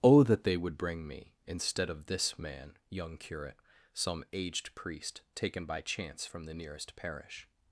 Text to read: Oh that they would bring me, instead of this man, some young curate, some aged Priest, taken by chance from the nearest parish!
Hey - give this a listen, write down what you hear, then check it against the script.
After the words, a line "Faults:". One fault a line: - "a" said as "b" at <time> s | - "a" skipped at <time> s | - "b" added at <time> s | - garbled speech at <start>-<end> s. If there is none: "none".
Oh that they would bring me, instead of this man, young curate, some aged Priest, taken by chance from the nearest parish!
Faults:
- "some" skipped at 2.8 s